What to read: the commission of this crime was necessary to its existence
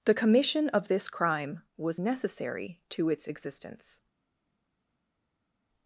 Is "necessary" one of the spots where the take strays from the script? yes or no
no